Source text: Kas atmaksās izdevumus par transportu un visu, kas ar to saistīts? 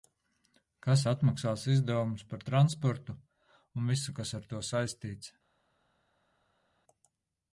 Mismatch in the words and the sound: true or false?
false